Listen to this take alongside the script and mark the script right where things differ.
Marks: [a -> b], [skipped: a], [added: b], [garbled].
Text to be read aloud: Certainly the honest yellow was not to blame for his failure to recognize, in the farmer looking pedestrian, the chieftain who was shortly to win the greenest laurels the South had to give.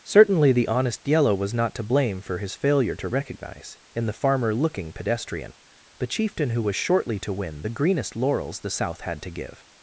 Certainly the honest yellow was not to blame for his failure to recognize, in the farmer looking pedestrian, the chieftain who was shortly to win the greenest laurels the South had to give.